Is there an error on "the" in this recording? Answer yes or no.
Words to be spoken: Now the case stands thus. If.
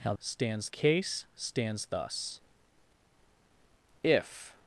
yes